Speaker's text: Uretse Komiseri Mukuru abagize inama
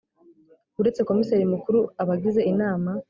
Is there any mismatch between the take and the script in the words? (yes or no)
no